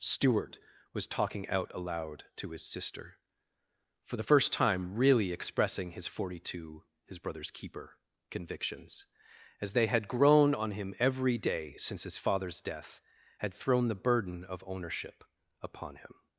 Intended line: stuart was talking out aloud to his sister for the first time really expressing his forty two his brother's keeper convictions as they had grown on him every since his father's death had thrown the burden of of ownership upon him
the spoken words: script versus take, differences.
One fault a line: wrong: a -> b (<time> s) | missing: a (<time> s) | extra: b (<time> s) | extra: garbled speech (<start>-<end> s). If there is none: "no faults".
extra: day (11.4 s)
missing: of (14.6 s)